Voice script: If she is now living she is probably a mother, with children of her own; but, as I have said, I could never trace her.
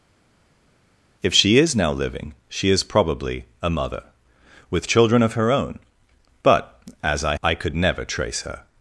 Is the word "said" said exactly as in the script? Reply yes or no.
no